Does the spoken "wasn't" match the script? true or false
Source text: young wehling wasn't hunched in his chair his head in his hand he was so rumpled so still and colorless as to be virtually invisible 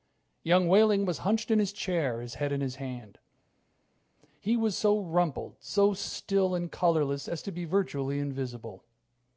false